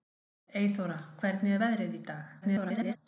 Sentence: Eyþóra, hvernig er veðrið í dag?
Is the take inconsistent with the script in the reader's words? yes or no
yes